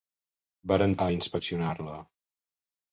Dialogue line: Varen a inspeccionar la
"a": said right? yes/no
yes